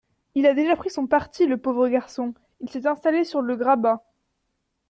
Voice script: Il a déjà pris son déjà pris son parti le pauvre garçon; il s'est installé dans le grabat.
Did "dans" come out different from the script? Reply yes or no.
yes